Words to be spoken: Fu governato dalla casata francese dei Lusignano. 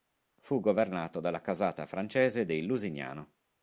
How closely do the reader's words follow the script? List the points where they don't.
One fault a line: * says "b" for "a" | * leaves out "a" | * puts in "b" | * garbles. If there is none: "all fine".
all fine